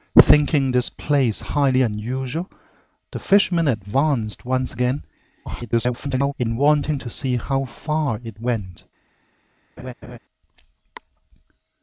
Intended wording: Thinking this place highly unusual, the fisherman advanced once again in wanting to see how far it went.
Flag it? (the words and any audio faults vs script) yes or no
yes